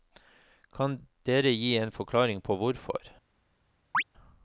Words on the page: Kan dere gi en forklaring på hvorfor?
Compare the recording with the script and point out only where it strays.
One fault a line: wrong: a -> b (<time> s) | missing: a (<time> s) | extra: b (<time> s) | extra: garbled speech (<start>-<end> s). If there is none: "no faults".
no faults